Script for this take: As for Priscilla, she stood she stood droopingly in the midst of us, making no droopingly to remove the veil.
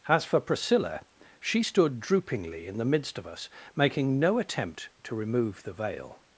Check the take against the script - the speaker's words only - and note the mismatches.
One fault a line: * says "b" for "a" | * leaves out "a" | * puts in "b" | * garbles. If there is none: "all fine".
* leaves out "she stood"
* says "attempt" for "droopingly"